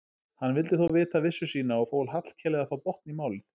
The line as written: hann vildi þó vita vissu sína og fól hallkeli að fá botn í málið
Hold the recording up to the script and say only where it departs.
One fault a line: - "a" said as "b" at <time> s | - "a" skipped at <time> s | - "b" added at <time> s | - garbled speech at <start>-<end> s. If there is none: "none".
none